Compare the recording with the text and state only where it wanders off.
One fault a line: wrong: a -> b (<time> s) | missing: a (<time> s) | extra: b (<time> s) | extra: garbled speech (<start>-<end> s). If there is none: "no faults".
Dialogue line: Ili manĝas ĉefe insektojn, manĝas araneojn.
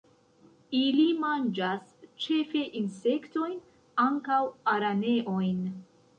wrong: manĝas -> ankaŭ (4.1 s)